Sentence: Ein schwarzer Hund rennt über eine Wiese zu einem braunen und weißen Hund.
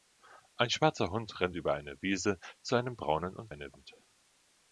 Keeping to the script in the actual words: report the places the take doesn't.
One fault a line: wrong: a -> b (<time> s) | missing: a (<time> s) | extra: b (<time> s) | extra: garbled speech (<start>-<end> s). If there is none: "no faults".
wrong: weißen -> eine (3.5 s)